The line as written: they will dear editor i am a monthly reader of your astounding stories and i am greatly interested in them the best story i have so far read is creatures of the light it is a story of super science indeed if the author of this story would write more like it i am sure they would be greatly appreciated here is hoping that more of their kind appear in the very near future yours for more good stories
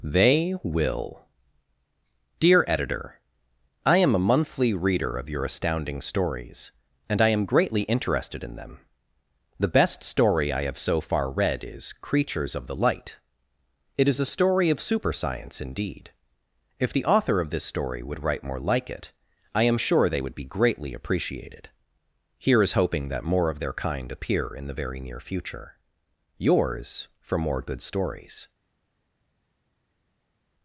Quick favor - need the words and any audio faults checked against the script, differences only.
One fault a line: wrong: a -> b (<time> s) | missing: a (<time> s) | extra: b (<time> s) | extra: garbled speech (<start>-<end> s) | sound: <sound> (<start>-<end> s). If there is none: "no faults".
no faults